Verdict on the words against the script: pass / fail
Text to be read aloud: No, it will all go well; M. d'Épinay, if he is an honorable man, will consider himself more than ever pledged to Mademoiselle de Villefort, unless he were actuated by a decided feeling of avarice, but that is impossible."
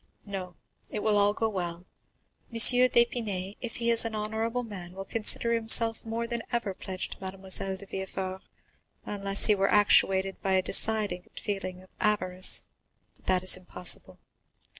pass